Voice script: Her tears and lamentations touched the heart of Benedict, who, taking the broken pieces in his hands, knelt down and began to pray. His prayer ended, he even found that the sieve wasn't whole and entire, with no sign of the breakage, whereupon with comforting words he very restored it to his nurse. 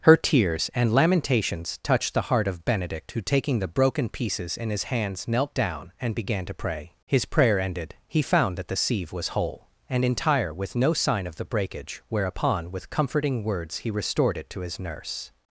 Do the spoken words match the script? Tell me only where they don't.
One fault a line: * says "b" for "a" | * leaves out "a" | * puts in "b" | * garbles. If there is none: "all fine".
* leaves out "even"
* says "was" for "wasn't"
* leaves out "very"